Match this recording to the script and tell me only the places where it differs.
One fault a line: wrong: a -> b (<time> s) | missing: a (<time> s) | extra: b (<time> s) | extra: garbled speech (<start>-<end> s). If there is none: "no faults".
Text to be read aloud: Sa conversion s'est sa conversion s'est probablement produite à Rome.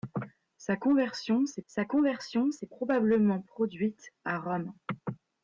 no faults